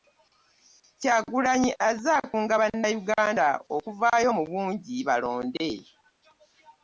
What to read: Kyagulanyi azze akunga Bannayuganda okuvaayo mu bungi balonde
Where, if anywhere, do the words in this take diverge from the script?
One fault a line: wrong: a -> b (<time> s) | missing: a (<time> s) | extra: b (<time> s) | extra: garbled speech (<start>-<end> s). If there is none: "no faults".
no faults